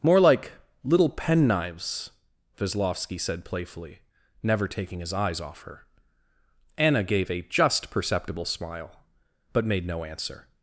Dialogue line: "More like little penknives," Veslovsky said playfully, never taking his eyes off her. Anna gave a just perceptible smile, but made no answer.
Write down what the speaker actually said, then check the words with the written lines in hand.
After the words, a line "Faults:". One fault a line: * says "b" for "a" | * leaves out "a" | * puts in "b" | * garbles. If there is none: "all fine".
"More like little penknives," Veslovsky said playfully, never taking his eyes off her. Anna gave a just perceptible smile, but made no answer.
Faults:
all fine